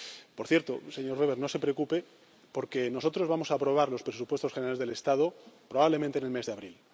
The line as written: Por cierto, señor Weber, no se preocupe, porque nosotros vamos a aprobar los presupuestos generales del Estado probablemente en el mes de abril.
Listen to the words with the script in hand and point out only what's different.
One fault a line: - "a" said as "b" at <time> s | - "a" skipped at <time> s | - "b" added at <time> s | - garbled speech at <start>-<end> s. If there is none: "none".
none